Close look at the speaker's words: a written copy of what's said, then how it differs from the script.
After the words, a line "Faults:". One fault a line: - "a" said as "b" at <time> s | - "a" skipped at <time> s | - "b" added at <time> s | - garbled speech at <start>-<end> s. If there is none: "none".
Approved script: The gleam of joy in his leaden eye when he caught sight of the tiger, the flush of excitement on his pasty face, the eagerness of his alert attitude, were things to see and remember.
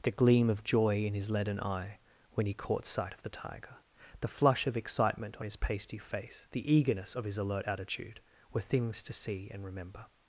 The gleam of joy in his leaden eye when he caught sight of the tiger, the flush of excitement on his pasty face, the eagerness of his alert attitude, were things to see and remember.
Faults:
none